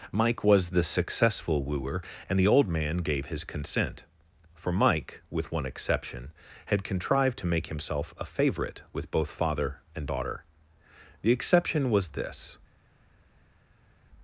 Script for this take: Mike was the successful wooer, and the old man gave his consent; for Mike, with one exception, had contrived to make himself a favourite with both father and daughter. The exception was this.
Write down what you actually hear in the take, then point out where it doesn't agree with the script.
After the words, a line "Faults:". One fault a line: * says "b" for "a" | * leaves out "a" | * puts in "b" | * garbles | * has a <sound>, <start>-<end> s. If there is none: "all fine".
Mike was the successful wooer, and the old man gave his consent; for Mike, with one exception, had contrived to make himself a favourite with both father and daughter. The exception was this.
Faults:
all fine